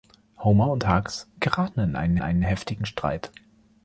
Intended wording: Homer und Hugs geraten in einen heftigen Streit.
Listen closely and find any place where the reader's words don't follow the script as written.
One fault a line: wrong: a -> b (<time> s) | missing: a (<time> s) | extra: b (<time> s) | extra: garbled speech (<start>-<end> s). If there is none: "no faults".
extra: einen (2.2 s)